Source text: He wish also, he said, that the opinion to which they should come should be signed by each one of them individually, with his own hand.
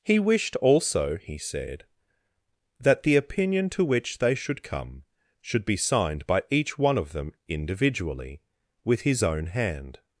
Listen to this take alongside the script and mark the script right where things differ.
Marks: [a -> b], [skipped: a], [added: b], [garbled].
He [wish -> wished] also, he said, that the opinion to which they should come should be signed by each one of them individually, with his own hand.